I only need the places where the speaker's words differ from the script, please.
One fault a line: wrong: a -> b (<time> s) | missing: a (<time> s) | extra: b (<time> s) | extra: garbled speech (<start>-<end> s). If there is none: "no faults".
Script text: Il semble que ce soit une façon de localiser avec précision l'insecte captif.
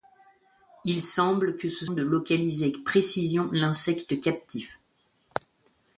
missing: soit une façon (1.9 s)